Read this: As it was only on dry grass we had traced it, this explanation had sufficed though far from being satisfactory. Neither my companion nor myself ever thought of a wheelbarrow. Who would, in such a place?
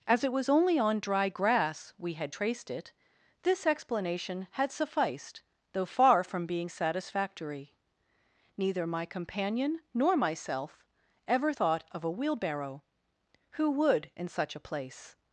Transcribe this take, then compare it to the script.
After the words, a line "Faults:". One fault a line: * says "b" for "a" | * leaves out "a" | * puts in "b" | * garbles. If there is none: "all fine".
As it was only on dry grass we had traced it, this explanation had sufficed though far from being satisfactory. Neither my companion nor myself ever thought of a wheelbarrow. Who would, in such a place?
Faults:
all fine